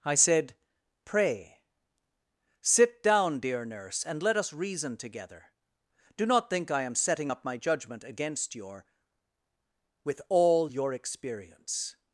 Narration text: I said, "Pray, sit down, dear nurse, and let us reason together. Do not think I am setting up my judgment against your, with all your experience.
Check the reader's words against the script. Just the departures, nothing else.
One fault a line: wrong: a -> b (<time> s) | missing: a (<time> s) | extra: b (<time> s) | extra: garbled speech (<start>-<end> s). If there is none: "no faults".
no faults